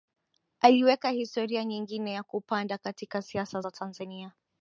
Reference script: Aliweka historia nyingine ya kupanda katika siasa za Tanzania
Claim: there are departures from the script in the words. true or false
false